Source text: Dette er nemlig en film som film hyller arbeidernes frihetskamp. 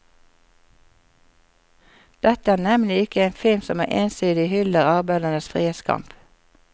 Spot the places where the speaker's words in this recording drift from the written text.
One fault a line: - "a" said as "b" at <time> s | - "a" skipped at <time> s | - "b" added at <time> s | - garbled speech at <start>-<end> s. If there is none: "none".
- "ikke" added at 3.0 s
- "film" said as "ensidig" at 3.9 s